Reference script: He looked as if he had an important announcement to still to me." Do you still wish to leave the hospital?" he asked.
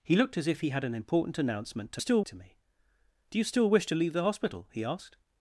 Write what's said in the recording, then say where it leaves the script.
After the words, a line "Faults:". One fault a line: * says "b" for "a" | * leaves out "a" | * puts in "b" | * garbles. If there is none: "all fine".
He looked as if he had an important announcement to still to me." Do you still wish to leave the hospital?" he asked.
Faults:
all fine